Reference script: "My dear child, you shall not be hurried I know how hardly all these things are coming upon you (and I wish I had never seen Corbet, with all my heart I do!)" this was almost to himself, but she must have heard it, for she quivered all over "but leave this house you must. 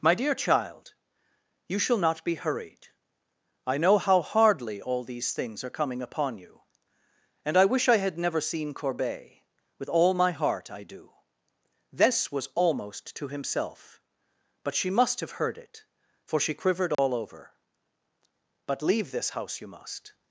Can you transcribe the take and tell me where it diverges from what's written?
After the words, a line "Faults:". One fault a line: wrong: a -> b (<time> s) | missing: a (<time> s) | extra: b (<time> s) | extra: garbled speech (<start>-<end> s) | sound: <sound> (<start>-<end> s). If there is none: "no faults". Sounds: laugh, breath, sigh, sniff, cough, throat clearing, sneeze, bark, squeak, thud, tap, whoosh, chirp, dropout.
"My dear child, you shall not be hurried I know how hardly all these things are coming upon you (and I wish I had never seen Corbet, with all my heart I do!)" this was almost to himself, but she must have heard it, for she quivered all over "but leave this house you must.
Faults:
sound: dropout (16.9-17.0 s)